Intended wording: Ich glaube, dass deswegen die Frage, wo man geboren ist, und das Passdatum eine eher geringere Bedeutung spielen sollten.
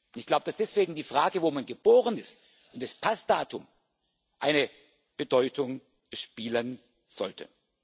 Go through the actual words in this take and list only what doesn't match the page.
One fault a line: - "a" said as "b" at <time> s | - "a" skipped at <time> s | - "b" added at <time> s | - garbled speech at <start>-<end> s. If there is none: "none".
- "eher geringere" skipped at 4.7 s